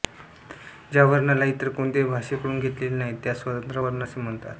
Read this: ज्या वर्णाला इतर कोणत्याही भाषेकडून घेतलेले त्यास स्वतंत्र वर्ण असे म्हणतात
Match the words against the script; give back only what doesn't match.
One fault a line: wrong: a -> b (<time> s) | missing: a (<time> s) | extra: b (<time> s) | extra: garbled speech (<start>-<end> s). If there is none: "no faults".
extra: नाही (3.0 s)